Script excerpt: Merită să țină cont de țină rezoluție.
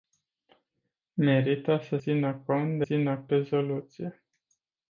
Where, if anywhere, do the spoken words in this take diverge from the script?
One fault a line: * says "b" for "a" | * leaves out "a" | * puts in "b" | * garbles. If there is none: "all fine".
all fine